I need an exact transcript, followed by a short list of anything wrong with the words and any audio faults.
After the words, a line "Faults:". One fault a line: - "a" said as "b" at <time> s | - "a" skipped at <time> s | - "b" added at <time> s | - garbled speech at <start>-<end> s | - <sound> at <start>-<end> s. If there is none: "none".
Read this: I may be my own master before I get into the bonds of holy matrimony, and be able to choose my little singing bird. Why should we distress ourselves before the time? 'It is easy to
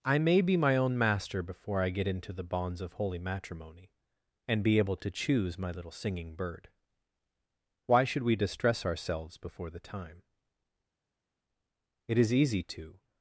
I may be my own master before I get into the bonds of holy matrimony, and be able to choose my little singing bird. Why should we distress ourselves before the time? 'It is easy to
Faults:
none